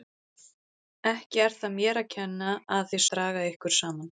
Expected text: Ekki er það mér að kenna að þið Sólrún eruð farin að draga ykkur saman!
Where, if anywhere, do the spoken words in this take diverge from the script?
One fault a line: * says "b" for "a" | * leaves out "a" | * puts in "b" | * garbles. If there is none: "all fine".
* leaves out "Sólrún eruð farin"